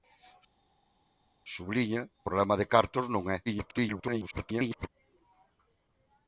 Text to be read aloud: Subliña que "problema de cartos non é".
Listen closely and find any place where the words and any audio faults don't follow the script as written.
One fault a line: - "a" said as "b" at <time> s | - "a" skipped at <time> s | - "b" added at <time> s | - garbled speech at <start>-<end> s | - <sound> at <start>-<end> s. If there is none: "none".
- "que" skipped at 2.0 s
- garbled speech at 3.5-4.9 s